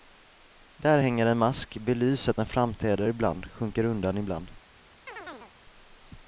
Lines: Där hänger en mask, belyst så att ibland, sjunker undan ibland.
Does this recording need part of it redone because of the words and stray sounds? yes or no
yes